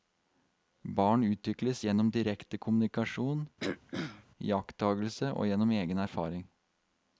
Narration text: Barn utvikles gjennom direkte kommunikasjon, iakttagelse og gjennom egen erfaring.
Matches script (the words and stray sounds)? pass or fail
fail